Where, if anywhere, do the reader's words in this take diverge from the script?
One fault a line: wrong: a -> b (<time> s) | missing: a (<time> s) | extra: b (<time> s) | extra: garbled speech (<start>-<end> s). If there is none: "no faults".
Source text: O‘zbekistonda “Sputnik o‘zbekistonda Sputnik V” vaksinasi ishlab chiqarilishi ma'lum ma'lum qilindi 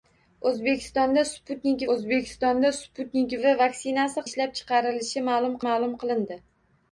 no faults